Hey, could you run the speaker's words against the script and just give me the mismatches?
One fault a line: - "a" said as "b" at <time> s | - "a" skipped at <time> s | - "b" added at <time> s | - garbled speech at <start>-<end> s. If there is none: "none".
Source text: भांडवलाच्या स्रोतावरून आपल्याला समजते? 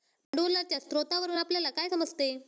- "काय" added at 1.7 s